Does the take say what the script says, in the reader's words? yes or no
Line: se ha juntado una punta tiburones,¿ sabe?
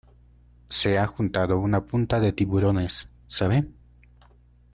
no